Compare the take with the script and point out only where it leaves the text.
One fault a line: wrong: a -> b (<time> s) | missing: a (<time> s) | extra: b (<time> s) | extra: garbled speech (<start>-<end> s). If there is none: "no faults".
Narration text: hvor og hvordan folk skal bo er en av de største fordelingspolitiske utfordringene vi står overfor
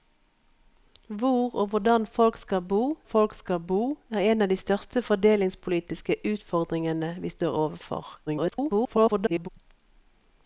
extra: folk skal bo (3.0 s)
extra: garbled speech (8.3-9.5 s)